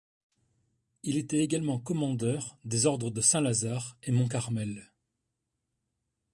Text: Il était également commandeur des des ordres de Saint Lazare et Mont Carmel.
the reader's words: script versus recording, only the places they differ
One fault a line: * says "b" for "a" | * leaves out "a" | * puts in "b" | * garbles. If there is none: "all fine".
* leaves out "des"